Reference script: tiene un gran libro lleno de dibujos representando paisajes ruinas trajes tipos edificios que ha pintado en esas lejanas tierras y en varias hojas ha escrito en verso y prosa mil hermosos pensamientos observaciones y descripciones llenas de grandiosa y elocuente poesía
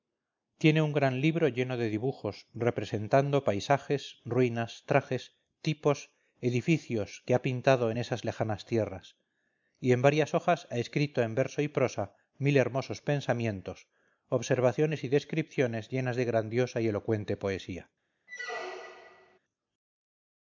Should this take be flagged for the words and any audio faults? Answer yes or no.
yes